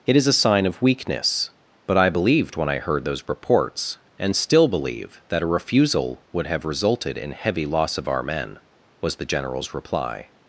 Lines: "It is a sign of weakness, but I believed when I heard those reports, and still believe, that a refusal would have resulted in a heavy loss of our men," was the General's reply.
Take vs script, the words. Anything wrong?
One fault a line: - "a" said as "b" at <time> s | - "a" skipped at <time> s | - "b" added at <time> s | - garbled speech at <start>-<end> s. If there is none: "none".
- "a" skipped at 7.3 s